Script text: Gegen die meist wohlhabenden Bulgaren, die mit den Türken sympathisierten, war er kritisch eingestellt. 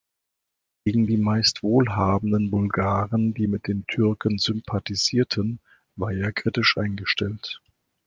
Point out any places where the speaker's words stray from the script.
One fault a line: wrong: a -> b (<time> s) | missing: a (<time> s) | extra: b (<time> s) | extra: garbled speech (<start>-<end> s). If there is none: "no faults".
no faults